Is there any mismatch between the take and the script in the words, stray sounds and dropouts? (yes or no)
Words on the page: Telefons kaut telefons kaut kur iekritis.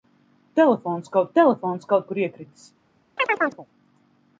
yes